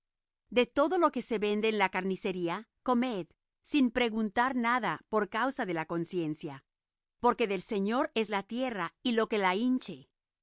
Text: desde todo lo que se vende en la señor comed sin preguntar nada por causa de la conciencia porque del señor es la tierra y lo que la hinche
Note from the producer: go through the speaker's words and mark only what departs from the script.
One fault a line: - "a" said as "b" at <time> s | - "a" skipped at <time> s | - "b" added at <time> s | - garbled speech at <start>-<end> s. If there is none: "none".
- "desde" said as "de" at 0.5 s
- "señor" said as "carnicería" at 1.9 s